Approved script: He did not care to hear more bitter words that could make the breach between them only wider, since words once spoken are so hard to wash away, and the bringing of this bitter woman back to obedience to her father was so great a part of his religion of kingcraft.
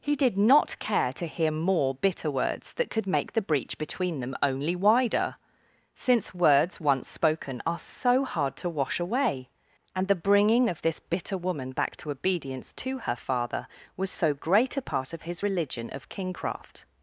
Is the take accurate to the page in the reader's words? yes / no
yes